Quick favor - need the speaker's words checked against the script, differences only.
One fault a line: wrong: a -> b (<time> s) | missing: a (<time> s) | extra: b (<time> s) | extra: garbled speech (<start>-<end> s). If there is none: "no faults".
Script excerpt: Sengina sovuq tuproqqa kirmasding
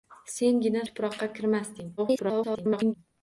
missing: sovuq (0.8 s)
extra: garbled speech (2.0-2.9 s)